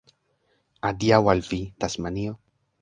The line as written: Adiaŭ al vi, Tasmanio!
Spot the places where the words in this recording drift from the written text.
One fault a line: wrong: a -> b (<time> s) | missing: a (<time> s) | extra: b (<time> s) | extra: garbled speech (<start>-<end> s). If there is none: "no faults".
no faults